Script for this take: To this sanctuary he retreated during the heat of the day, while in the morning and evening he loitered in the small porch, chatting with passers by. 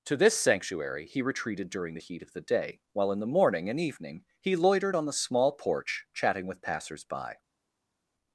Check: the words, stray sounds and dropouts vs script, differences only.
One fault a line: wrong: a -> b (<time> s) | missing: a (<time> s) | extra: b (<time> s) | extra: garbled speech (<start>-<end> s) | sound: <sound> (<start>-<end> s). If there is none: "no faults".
wrong: in -> on (4.9 s)